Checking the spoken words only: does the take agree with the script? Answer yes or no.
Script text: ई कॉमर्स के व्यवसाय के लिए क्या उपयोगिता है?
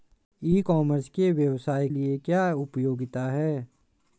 no